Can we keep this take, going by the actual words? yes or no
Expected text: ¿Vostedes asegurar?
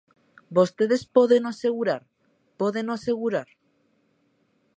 no